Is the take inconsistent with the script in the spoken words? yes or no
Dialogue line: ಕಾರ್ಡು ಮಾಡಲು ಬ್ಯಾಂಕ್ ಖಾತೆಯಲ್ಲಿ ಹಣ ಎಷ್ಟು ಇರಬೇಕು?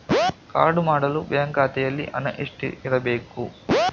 no